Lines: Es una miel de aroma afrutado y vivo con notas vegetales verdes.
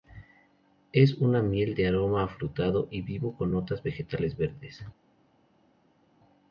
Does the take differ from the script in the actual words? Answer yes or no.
no